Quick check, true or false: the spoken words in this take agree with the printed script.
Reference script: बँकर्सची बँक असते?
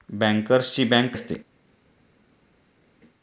true